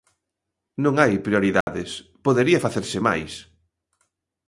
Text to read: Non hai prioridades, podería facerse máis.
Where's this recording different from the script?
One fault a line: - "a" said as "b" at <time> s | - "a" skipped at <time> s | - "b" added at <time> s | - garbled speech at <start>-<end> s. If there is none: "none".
none